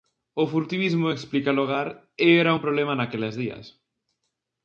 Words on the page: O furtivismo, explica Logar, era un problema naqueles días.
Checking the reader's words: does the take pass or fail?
pass